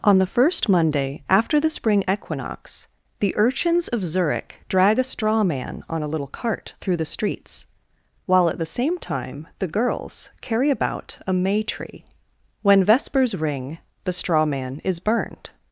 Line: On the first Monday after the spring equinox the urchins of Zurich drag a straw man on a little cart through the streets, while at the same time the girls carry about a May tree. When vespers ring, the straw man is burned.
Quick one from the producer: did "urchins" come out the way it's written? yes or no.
yes